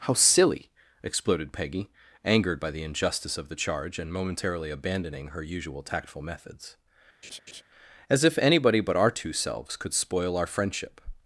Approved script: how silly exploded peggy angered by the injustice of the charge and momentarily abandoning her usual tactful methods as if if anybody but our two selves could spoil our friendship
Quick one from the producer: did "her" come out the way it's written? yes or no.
yes